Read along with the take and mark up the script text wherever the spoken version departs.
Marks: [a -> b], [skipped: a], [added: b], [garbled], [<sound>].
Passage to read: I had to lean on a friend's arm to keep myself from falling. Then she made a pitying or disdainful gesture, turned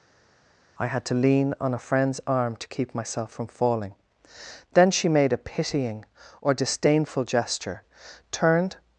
I had to lean on a friend's arm to keep myself from falling. Then she made a pitying or disdainful gesture, turned